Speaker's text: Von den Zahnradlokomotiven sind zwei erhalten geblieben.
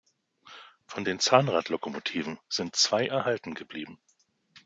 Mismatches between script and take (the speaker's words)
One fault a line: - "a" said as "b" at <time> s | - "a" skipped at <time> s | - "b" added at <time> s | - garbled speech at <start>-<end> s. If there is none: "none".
none